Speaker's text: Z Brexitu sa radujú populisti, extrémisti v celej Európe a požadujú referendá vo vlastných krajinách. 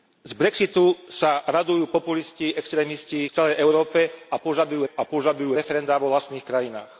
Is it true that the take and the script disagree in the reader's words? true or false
true